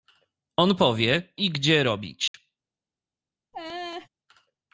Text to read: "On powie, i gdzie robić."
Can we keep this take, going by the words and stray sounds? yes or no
no